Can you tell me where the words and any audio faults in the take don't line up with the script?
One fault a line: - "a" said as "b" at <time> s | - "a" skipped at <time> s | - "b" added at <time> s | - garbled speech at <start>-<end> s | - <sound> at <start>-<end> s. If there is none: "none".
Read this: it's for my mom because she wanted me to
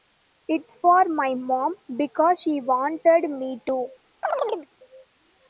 - chirp at 4.2-4.7 s